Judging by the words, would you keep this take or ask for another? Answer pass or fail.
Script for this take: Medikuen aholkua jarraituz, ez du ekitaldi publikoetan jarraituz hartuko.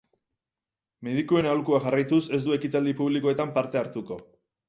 fail